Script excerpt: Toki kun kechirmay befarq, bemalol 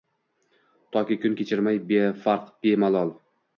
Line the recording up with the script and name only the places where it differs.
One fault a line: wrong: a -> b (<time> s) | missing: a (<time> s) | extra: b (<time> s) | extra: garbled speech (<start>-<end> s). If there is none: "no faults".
no faults